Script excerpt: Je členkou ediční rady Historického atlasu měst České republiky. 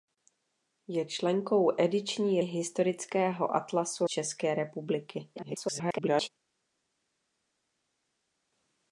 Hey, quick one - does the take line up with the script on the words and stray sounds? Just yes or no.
no